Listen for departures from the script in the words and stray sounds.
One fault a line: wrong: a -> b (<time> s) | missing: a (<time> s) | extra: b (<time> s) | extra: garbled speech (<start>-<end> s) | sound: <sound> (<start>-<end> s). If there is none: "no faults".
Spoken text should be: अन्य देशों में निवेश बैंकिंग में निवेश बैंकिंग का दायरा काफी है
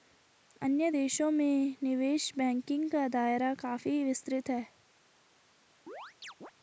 missing: में निवेश बैंकिंग (2.9 s)
extra: विस्तृत (4.0 s)
sound: chirp (5.9-6.5 s)